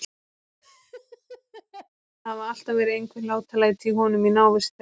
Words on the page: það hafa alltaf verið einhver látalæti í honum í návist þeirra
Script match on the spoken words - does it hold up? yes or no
yes